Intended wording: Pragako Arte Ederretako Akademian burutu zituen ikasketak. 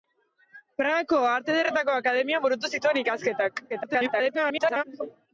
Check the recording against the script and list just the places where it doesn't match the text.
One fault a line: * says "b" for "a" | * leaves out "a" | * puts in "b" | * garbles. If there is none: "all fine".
* garbles